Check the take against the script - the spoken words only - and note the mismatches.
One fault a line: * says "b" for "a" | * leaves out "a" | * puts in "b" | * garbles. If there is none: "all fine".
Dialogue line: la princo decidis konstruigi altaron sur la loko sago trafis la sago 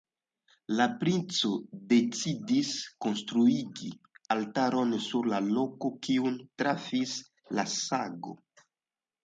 * says "kiun" for "sago"